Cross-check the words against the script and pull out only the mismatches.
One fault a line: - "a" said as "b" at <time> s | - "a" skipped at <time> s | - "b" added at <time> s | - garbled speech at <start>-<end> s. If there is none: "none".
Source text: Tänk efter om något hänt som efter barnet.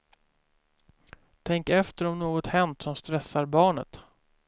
- "efter" said as "stressar" at 3.0 s